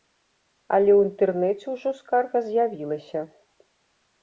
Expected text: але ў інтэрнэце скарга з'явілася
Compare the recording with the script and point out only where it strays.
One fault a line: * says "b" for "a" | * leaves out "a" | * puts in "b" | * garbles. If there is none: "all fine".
* puts in "ўжо"